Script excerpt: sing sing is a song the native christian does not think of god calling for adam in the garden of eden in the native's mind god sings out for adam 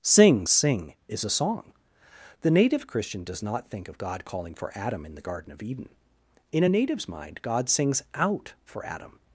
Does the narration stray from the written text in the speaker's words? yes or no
yes